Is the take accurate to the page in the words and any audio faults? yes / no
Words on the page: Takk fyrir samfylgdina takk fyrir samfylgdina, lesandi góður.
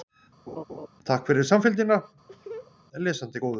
no